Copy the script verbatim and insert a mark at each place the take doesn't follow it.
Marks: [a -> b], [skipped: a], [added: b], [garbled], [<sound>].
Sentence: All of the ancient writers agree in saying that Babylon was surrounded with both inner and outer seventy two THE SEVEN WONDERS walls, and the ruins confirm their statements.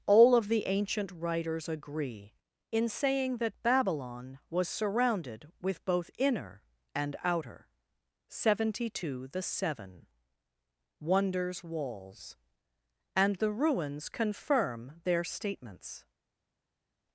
All of the ancient writers agree in saying that Babylon was surrounded with both inner and outer seventy two THE SEVEN WONDERS walls, and the ruins confirm their statements.